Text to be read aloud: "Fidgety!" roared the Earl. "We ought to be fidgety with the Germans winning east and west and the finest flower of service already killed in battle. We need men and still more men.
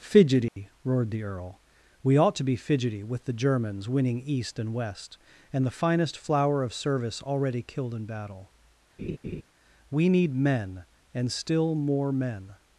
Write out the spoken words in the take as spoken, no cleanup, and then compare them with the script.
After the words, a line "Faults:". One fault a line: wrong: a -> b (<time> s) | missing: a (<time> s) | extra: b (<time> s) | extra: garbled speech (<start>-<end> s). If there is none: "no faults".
"Fidgety!" roared the Earl. "We ought to be fidgety with the Germans winning east and west and the finest flower of service already killed in battle. We need men and still more men.
Faults:
no faults